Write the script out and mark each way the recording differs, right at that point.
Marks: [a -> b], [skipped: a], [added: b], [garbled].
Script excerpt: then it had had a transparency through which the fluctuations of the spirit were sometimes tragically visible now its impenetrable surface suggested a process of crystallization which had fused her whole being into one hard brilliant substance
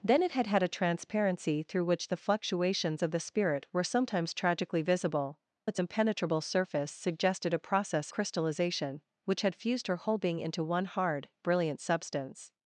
then it had had a transparency through which the fluctuations of the spirit were sometimes tragically visible [skipped: now] its impenetrable surface suggested a process [skipped: of] crystallization which had fused her whole being into one hard brilliant substance